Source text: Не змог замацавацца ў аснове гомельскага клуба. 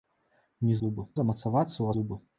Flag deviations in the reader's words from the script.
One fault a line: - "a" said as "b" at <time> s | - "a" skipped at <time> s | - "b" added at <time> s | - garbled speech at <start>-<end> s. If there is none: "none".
- "змог" said as "клуба" at 0.8 s
- "аснове гомельскага" skipped at 1.9 s